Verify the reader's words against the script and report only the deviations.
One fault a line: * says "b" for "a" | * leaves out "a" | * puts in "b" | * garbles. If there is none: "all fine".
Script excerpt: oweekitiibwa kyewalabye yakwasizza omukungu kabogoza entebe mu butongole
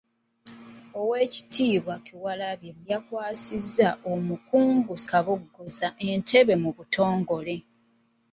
all fine